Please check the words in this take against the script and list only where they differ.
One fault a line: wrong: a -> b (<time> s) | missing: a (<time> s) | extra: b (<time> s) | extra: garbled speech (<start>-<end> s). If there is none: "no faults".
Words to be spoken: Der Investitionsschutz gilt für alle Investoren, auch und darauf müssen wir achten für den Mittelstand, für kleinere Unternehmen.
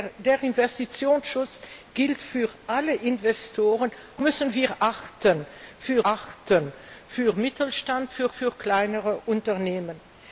missing: auch und darauf (3.9 s)
extra: achten für (6.0 s)
extra: für (8.3 s)